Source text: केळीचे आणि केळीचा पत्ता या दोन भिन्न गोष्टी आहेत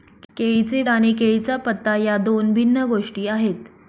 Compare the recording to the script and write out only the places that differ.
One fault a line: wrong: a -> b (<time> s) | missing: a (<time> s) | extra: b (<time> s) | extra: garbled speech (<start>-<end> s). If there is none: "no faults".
no faults